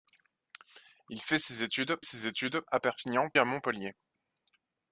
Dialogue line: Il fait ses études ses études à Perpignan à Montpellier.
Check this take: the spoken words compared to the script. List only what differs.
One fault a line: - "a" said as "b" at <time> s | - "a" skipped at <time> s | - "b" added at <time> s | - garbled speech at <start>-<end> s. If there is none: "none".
none